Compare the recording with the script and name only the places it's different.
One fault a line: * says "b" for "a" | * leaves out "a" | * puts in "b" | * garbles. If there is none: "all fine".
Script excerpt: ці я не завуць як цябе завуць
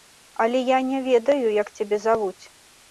* says "але" for "ці"
* says "ведаю" for "завуць"